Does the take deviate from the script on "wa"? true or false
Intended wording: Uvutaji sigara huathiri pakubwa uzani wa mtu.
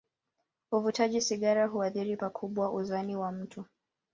false